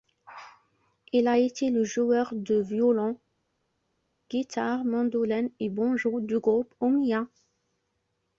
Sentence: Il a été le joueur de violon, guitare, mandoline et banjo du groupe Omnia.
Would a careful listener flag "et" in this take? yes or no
no